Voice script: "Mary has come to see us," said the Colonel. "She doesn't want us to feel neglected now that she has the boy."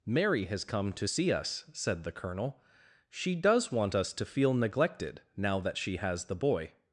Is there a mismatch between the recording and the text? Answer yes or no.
yes